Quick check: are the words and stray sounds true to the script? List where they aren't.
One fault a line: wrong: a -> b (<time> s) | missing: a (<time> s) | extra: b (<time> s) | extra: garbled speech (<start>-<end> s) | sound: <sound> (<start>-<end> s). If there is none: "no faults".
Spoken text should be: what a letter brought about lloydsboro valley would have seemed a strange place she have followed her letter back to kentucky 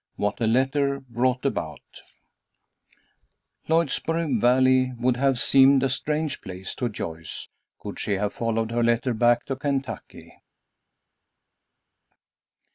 extra: to joyce could (6.7 s)